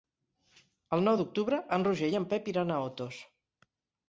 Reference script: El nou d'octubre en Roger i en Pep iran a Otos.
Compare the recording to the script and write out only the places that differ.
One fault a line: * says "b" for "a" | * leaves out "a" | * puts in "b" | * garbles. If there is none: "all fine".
all fine